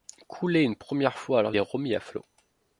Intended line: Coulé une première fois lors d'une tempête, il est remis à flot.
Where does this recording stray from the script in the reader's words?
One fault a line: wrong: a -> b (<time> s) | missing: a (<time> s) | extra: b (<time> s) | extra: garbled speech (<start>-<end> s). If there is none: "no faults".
missing: d'une tempête il (1.5 s)